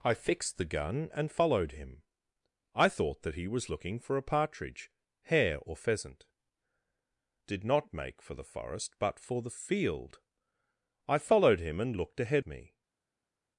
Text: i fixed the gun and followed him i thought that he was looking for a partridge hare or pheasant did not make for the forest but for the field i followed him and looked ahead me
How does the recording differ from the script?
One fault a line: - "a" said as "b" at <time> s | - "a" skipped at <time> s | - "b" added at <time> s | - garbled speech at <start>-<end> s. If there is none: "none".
none